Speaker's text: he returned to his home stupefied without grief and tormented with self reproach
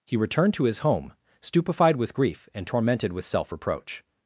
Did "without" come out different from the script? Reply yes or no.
yes